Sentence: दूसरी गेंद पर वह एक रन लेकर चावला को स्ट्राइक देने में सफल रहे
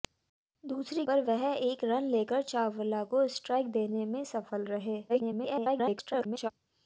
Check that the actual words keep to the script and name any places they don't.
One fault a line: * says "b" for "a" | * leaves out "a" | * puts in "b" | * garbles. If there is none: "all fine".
* leaves out "गेंद"
* garbles